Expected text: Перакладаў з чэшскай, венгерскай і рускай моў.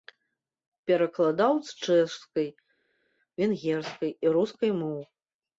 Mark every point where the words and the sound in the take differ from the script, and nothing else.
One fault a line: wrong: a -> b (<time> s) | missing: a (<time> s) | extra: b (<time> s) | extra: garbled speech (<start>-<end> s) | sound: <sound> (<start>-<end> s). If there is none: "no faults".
no faults